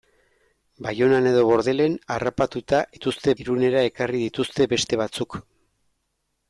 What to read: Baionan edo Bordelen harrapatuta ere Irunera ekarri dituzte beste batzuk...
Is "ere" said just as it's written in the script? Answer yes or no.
no